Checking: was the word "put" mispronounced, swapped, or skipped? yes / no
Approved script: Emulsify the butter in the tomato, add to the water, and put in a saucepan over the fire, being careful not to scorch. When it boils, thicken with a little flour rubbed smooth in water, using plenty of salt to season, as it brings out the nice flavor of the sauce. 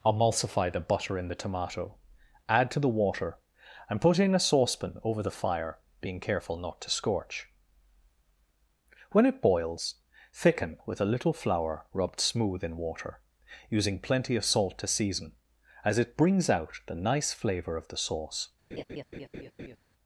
no